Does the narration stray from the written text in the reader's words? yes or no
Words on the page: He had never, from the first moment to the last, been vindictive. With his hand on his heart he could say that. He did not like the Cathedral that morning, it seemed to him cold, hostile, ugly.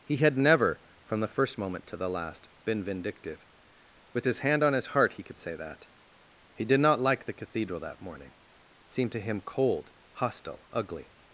no